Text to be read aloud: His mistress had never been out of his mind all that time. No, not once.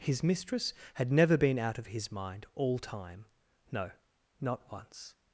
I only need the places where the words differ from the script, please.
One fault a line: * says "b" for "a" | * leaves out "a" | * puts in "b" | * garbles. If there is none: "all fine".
* leaves out "that"